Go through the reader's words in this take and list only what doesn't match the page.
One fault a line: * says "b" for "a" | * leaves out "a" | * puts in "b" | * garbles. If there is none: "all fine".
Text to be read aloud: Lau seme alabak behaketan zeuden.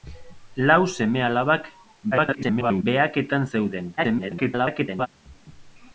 * garbles
* garbles